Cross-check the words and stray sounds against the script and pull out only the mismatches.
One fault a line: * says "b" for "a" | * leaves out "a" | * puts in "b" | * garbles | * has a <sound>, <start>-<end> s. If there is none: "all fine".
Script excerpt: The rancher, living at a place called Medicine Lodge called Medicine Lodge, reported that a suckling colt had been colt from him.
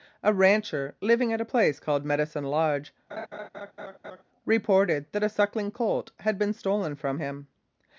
* says "A" for "The"
* leaves out "called Medicine Lodge"
* has a laugh, 3.1-4.2 s
* says "stolen" for "colt"